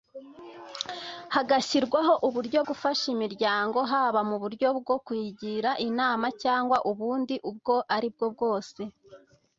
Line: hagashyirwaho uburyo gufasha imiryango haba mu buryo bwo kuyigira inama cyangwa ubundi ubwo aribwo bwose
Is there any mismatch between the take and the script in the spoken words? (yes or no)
no